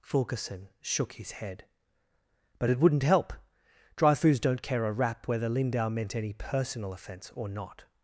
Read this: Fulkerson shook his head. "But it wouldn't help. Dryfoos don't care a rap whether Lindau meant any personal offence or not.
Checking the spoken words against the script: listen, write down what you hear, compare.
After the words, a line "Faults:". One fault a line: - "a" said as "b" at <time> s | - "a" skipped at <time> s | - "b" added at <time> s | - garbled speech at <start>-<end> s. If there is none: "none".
Fulkerson shook his head. "But it wouldn't help. Dryfoos don't care a rap whether Lindau meant any personal offence or not.
Faults:
none